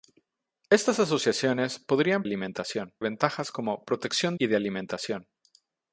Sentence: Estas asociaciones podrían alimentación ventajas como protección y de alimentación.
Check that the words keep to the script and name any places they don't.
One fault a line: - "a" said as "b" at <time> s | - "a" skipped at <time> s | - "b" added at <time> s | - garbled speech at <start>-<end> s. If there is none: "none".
none